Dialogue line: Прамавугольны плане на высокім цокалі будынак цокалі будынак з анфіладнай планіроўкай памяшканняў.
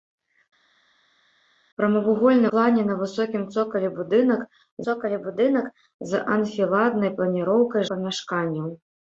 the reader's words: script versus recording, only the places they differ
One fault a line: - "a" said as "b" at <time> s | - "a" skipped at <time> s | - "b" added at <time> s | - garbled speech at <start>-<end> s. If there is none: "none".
none